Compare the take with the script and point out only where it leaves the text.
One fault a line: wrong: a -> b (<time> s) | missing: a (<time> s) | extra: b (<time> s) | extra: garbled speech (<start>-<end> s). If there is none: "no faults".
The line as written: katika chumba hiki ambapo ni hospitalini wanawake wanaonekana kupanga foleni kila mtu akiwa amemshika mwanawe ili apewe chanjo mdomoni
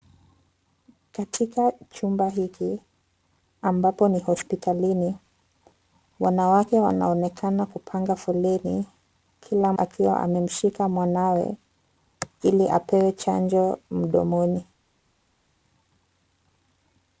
missing: mtu (9.7 s)